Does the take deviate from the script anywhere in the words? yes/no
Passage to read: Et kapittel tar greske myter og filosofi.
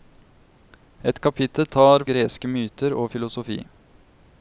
no